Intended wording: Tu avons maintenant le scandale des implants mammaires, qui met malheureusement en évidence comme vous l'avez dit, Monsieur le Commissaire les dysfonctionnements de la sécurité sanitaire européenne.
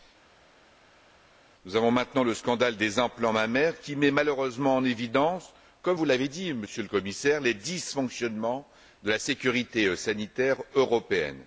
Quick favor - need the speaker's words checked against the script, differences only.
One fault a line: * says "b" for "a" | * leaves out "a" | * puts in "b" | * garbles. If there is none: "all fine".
* says "Nous" for "Tu"